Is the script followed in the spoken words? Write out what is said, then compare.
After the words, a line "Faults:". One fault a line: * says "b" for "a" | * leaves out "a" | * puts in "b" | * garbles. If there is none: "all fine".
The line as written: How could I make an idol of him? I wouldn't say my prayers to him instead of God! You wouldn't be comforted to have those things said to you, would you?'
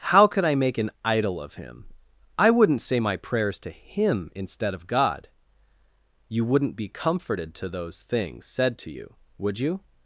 How could I make an idol of him? I wouldn't say my prayers to him instead of God! You wouldn't be comforted to those things said to you, would you?'
Faults:
* leaves out "have"